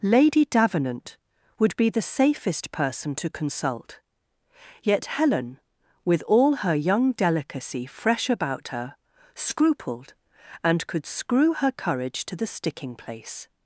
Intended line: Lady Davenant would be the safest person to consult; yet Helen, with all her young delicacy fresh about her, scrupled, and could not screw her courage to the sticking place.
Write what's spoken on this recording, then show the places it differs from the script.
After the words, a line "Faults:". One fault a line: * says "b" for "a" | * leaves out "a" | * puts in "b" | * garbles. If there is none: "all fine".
Lady Davenant would be the safest person to consult; yet Helen, with all her young delicacy fresh about her, scrupled, and could screw her courage to the sticking place.
Faults:
* leaves out "not"